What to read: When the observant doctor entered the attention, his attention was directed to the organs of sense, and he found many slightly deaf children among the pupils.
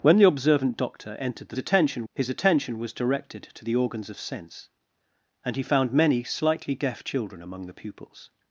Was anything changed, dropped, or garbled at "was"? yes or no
no